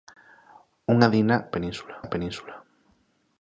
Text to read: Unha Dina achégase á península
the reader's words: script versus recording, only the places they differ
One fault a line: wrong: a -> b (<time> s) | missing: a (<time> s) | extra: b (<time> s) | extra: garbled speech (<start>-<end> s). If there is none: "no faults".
wrong: achégase -> península (1.5 s)